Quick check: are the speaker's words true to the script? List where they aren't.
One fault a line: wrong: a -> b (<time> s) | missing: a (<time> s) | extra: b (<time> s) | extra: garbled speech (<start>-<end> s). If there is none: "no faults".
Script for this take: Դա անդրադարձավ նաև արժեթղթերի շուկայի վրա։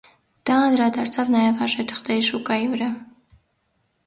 no faults